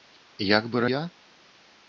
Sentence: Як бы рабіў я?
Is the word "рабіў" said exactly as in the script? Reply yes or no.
no